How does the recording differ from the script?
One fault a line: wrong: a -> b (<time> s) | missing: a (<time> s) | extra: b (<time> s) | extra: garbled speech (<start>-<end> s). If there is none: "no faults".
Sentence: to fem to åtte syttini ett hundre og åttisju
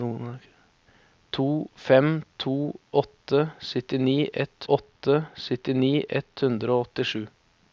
extra: åtte syttini ett (4.7 s)